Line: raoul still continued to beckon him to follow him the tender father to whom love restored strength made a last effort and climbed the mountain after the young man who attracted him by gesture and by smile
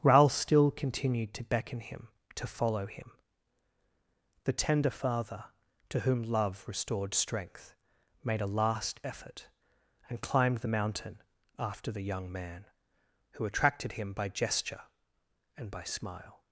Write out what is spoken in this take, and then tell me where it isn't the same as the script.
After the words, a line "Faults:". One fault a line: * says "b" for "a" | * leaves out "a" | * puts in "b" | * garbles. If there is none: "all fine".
raoul still continued to beckon him to follow him the tender father to whom love restored strength made a last effort and climbed the mountain after the young man who attracted him by gesture and by smile
Faults:
all fine